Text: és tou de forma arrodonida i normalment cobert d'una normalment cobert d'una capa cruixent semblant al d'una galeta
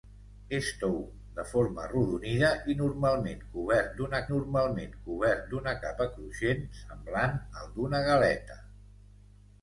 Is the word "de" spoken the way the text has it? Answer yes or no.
yes